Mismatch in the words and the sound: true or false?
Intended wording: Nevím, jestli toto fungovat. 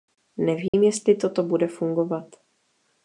true